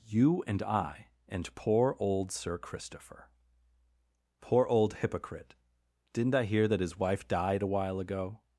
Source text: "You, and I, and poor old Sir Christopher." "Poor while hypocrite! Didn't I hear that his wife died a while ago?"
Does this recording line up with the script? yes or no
no